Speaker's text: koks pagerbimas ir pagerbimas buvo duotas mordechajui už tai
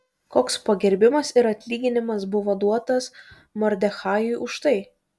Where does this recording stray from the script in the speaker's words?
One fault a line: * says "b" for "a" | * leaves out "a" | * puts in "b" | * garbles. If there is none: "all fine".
* says "atlyginimas" for "pagerbimas"